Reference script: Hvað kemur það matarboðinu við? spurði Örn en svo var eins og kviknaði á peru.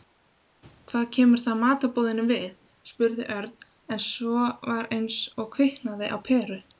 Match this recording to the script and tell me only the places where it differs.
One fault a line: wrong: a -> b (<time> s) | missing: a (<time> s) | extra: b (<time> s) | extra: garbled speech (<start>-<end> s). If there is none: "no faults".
no faults